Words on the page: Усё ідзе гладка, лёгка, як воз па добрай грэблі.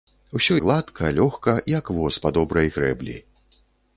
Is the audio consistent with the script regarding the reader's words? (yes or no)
no